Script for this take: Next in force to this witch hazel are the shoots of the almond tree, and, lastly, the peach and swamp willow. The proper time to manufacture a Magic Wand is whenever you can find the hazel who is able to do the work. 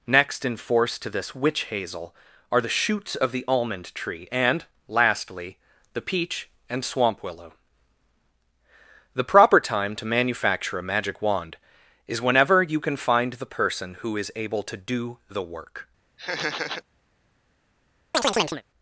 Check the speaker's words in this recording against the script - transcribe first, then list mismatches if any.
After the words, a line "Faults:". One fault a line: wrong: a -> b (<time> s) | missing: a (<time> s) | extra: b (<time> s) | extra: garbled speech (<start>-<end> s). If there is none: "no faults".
Next in force to this witch hazel are the shoots of the almond tree, and, lastly, the peach and swamp willow. The proper time to manufacture a Magic Wand is whenever you can find the person who is able to do the work.
Faults:
wrong: hazel -> person (13.4 s)